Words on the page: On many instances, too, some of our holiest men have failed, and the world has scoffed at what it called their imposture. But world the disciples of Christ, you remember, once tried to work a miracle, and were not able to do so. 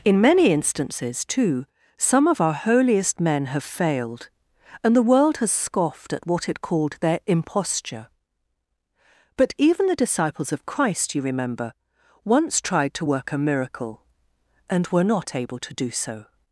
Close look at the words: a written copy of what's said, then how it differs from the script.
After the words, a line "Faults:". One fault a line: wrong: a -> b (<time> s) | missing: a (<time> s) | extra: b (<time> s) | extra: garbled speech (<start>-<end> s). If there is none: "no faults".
In many instances, too, some of our holiest men have failed, and the world has scoffed at what it called their imposture. But even the disciples of Christ, you remember, once tried to work a miracle, and were not able to do so.
Faults:
wrong: On -> In (0.0 s)
wrong: world -> even (9.6 s)